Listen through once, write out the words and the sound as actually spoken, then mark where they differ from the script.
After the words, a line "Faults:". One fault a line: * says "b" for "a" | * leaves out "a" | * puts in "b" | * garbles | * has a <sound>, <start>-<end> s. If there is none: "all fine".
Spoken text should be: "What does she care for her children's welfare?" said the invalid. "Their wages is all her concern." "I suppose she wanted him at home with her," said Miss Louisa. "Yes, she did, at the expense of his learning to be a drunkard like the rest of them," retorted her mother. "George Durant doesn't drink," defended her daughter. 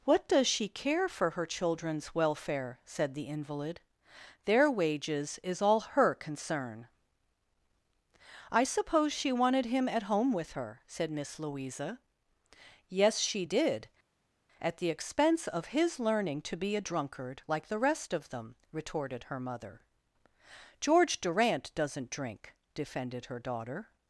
"What does she care for her children's welfare?" said the invalid. "Their wages is all her concern." "I suppose she wanted him at home with her," said Miss Louisa. "Yes, she did, at the expense of his learning to be a drunkard like the rest of them," retorted her mother. "George Durant doesn't drink," defended her daughter.
Faults:
all fine